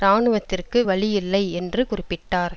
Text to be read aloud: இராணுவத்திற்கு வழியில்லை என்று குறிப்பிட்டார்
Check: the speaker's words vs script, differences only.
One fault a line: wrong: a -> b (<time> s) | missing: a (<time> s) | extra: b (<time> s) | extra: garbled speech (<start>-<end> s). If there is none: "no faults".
no faults